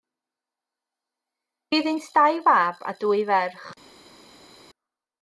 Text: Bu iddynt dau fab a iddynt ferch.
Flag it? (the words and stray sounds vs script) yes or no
yes